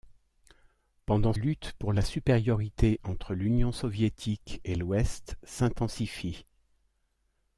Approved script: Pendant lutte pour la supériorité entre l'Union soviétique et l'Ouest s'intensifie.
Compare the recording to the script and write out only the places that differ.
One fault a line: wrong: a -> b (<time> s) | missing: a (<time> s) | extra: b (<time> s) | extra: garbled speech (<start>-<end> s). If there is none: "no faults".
no faults